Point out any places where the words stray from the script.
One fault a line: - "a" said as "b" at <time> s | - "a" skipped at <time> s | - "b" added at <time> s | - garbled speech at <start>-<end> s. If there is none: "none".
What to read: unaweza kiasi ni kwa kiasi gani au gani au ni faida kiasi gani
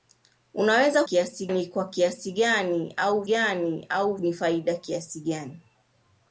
none